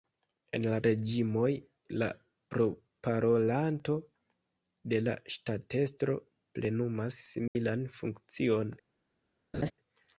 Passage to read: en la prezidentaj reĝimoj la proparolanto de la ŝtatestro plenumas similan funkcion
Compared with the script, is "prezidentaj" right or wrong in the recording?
wrong